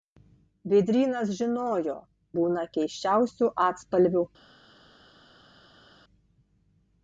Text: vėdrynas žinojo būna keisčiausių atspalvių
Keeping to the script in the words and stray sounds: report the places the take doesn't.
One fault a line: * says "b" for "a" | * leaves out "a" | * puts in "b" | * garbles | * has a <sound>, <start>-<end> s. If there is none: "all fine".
all fine